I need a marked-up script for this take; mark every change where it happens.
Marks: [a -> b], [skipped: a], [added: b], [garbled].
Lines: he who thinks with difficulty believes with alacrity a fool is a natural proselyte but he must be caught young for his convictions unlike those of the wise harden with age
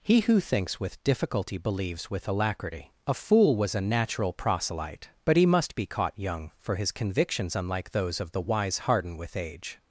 he who thinks with difficulty believes with alacrity a fool [is -> was] a natural proselyte but he must be caught young for his convictions unlike those of the wise harden with age